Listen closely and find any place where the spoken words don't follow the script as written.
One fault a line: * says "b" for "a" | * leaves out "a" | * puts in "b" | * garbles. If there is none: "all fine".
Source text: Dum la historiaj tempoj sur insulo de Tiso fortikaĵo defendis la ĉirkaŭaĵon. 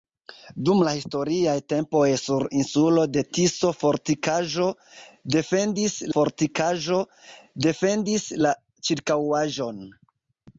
* puts in "fortikaĵo defendis"